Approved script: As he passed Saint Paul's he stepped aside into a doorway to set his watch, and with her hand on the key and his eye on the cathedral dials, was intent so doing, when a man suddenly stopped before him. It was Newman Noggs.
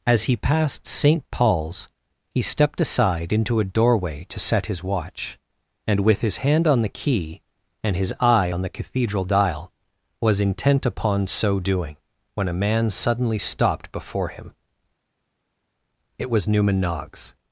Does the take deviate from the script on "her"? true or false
true